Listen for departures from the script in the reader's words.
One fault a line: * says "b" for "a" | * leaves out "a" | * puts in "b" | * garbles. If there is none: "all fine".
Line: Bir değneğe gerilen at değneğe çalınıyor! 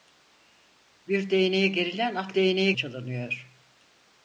all fine